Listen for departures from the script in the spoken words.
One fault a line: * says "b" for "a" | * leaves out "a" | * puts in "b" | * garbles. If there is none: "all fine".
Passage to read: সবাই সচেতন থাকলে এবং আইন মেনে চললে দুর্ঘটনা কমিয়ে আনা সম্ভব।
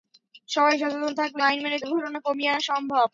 * leaves out "এবং"
* leaves out "চললে"